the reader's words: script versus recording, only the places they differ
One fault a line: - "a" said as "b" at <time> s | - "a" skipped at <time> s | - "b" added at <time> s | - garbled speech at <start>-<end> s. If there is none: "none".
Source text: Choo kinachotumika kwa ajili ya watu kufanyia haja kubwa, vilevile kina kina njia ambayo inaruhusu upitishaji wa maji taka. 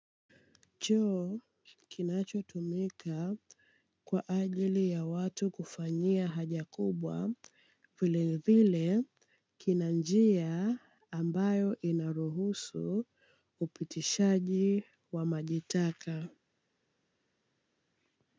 - "kina" skipped at 9.9 s